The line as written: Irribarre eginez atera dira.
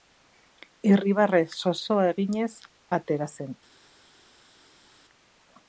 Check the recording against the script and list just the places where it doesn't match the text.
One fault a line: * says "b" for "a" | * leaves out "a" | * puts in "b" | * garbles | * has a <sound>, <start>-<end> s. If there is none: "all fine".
* puts in "zozoa"
* says "zen" for "dira"